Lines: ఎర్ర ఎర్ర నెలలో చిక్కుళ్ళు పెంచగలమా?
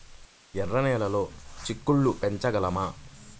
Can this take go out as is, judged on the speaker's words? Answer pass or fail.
fail